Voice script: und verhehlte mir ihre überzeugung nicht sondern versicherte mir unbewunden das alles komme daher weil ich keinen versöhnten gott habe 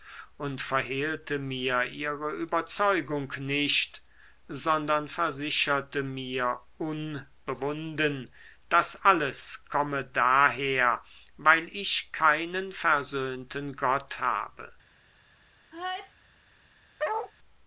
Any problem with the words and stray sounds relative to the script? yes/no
yes